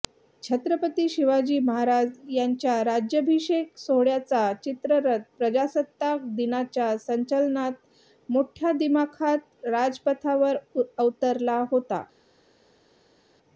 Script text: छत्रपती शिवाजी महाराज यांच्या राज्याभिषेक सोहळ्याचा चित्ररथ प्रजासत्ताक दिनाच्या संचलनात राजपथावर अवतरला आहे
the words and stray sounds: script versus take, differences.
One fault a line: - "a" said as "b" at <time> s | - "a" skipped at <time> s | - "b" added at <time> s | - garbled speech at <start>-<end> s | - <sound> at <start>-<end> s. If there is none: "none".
- "मोठ्या दिमाखात" added at 8.3 s
- "आहे" said as "होता" at 11.7 s